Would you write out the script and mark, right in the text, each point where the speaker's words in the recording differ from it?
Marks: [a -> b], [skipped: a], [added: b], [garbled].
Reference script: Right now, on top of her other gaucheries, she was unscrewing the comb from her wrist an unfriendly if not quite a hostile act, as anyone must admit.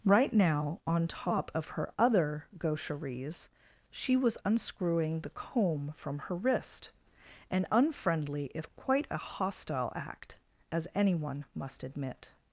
Right now, on top of her other gaucheries, she was unscrewing the comb from her wrist an unfriendly if [skipped: not] quite a hostile act, as anyone must admit.